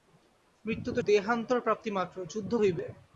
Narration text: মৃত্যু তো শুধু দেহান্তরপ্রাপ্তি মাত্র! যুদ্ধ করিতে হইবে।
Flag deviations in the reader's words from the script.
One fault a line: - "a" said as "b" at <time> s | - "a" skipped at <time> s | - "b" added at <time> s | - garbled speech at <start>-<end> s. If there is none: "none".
- "শুধু" skipped at 1.0 s
- "করিতে" skipped at 2.5 s